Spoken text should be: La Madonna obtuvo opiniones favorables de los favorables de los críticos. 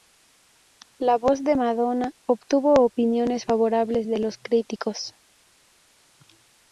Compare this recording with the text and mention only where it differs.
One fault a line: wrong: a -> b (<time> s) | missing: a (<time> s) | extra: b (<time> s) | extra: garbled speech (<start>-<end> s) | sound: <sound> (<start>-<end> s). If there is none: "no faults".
extra: voz de (1.2 s)
missing: favorables de los (4.4 s)